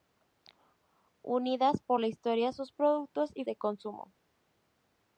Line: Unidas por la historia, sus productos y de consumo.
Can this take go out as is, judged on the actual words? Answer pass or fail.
pass